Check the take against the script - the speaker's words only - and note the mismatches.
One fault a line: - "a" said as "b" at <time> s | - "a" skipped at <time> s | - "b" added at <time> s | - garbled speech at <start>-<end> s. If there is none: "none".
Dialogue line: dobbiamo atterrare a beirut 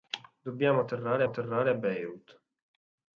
- "atterrare" added at 1.2 s